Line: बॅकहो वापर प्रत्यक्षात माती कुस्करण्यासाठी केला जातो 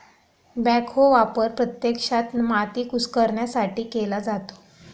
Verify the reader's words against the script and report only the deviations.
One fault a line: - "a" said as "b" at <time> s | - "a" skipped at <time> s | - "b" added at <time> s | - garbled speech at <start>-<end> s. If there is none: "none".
none